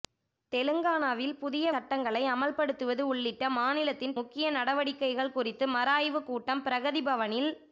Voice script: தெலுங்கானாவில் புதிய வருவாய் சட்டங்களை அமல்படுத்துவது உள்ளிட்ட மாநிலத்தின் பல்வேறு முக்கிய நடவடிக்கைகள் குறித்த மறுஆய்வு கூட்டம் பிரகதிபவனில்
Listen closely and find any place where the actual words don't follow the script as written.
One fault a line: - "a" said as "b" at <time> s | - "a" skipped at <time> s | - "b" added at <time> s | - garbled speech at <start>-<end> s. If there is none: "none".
- "வருவாய்" skipped at 1.6 s
- "பல்வேறு" skipped at 4.1 s